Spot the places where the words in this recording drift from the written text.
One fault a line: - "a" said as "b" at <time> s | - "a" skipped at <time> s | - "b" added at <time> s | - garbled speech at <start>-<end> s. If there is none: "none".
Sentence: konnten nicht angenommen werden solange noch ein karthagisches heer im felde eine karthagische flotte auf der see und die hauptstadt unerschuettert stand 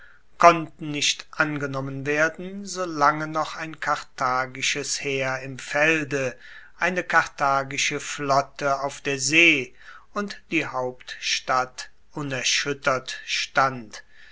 none